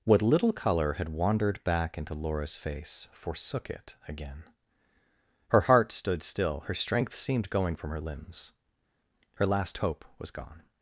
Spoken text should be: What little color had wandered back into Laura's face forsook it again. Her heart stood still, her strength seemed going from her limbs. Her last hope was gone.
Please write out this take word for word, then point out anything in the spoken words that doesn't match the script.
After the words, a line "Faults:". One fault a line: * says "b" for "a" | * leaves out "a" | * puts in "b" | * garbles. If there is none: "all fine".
What little color had wandered back into Laura's face forsook it again. Her heart stood still, her strength seemed going from her limbs. Her last hope was gone.
Faults:
all fine